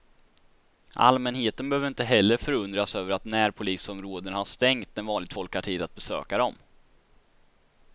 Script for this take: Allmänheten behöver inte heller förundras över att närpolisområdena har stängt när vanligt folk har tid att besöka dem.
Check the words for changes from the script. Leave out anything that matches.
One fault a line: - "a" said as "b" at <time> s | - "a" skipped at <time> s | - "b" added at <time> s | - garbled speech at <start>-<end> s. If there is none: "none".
none